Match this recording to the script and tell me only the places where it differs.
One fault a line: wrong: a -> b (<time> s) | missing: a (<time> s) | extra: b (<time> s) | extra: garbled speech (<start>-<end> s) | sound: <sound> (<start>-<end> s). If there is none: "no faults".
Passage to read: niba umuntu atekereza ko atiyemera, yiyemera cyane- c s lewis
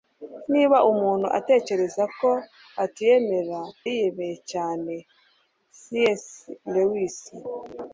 no faults